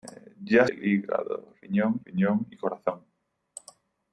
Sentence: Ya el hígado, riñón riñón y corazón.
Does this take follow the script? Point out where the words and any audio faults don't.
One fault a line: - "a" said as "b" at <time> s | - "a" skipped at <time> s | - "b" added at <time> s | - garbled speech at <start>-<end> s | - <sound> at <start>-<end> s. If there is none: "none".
none